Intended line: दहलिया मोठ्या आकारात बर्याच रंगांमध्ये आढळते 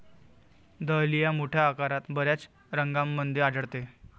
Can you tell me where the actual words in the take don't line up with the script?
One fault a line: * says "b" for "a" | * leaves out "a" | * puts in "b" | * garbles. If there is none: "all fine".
all fine